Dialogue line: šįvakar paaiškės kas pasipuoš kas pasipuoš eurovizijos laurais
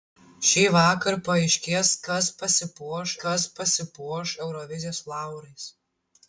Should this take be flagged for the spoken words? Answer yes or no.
no